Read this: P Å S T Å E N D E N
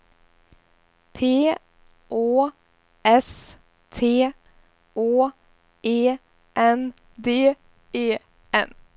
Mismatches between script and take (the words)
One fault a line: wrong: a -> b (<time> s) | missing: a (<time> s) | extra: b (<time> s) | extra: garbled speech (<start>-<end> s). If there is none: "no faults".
no faults